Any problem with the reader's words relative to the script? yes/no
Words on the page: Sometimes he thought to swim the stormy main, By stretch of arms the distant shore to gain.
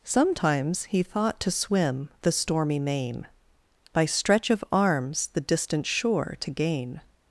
no